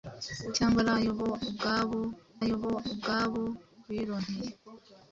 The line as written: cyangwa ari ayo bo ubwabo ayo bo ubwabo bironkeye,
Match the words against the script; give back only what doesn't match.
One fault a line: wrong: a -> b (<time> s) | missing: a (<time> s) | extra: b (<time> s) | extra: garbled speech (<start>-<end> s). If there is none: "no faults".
no faults